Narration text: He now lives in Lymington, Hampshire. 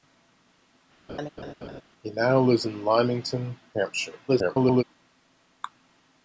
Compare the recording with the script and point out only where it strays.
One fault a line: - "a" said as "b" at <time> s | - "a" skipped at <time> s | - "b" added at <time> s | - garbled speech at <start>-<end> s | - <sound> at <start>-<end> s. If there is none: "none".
- laugh at 1.1-1.8 s
- garbled speech at 4.3-4.8 s